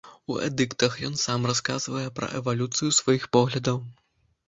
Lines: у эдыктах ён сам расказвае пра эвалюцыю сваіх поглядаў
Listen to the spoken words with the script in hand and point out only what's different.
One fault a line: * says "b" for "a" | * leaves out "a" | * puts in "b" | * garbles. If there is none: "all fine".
all fine